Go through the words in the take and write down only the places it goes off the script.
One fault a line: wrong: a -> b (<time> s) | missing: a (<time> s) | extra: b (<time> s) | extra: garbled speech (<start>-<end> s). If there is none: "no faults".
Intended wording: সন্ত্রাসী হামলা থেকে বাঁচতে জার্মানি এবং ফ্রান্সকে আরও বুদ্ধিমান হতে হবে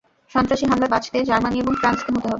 missing: থেকে (0.9 s)
missing: আরও বুদ্ধিমান (2.1 s)